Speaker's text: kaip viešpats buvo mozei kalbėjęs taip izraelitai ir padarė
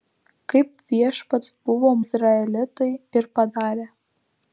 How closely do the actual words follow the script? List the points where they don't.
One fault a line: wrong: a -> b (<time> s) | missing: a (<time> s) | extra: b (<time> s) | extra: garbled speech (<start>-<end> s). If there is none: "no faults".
missing: mozei kalbėjęs taip (1.9 s)